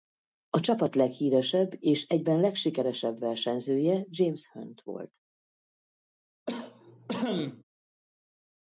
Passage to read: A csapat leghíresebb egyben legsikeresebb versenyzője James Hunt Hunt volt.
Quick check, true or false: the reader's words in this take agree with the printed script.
false